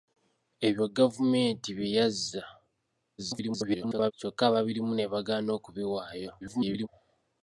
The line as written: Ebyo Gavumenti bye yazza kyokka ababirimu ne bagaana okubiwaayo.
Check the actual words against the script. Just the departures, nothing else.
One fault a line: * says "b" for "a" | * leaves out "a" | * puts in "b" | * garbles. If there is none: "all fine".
* garbles
* garbles